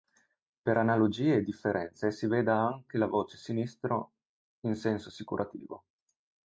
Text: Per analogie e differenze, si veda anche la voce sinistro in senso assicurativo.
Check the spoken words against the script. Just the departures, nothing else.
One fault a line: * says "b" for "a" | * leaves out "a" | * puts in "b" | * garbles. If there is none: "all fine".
all fine